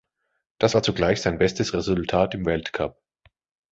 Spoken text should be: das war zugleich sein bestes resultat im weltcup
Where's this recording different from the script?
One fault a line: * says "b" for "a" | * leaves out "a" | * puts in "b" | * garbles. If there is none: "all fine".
all fine